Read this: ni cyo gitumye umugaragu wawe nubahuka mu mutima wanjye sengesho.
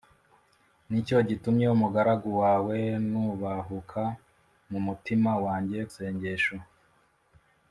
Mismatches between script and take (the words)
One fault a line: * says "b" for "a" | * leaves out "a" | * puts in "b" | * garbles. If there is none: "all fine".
all fine